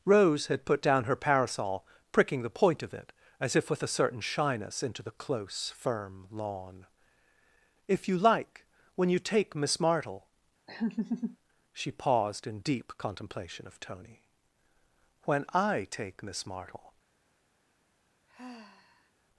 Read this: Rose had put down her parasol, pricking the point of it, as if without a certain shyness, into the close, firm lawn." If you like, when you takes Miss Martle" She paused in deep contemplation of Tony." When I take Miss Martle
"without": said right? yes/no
no